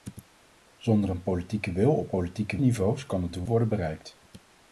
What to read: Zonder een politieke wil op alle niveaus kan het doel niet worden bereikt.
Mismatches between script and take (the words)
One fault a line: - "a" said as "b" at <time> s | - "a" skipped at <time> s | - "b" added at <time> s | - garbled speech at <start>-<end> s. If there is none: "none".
- "alle" said as "politieke" at 2.1 s
- "niet" skipped at 3.5 s